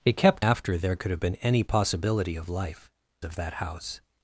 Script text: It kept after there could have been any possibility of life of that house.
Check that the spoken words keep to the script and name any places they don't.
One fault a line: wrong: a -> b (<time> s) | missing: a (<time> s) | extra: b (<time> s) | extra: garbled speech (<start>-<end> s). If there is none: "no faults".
no faults